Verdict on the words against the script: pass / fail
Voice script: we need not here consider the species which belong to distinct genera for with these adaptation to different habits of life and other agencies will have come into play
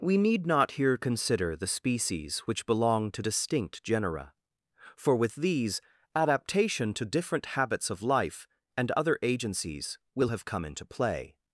pass